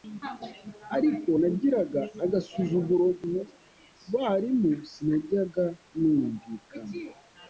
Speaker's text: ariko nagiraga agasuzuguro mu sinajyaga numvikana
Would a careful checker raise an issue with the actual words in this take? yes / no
yes